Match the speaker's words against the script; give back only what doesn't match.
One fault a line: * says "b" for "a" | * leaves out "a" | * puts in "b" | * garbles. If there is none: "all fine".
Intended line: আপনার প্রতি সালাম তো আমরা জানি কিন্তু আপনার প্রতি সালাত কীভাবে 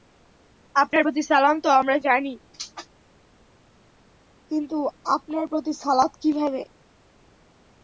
all fine